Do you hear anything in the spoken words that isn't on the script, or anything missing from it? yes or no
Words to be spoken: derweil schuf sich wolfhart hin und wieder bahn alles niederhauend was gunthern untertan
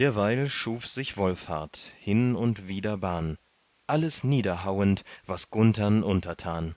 no